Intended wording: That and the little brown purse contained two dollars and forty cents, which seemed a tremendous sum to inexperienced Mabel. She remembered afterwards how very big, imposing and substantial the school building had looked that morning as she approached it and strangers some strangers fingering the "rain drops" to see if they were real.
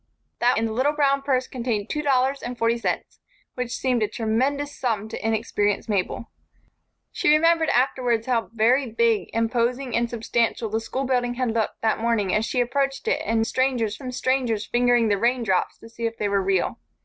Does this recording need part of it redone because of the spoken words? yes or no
no